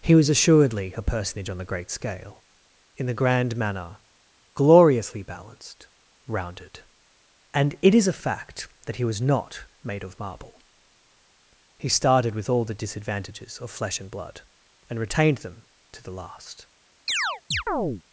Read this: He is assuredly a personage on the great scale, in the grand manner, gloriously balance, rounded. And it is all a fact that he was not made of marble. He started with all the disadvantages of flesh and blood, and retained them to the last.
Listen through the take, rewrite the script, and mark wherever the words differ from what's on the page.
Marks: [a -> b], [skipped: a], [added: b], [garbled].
He [is -> was] assuredly a personage on the great scale, in the grand manner, gloriously [balance, -> balanced] rounded. And it is [skipped: all] a fact that he was not made of marble. He started with all the disadvantages of flesh and blood, and retained them to the last.